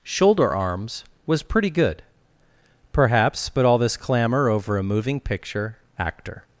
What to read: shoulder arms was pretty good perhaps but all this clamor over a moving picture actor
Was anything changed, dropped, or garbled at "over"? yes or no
no